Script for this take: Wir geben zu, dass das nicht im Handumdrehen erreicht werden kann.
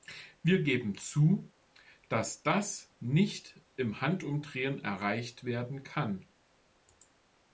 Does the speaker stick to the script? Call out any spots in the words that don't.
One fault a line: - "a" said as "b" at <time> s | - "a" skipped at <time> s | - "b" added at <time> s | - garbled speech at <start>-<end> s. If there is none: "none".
none